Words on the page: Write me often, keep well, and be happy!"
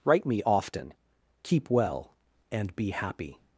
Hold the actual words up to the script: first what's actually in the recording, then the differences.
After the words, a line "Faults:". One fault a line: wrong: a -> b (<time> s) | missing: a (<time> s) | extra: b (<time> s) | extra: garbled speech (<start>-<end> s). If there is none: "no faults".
Write me often, keep well, and be happy!"
Faults:
no faults